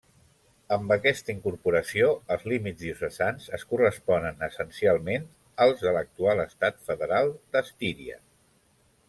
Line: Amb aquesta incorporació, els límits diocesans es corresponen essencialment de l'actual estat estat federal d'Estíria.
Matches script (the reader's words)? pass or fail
fail